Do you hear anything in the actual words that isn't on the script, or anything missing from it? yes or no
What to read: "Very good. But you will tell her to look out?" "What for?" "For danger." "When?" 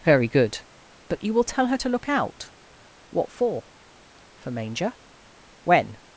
yes